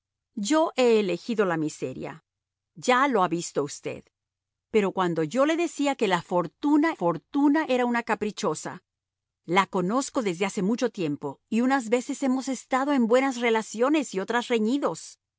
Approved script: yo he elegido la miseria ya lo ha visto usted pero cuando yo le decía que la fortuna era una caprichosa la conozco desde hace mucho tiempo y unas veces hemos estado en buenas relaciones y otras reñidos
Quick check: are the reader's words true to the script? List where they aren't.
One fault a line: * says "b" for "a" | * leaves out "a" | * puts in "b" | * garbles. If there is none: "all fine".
* puts in "fortuna"